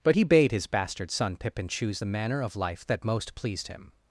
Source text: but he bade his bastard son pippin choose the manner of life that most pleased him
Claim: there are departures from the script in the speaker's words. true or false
false